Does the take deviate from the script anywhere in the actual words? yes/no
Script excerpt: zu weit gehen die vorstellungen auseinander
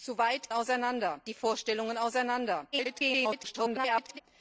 yes